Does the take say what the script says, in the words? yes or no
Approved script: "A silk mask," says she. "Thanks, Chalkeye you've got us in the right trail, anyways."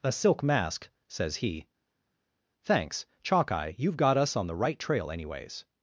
no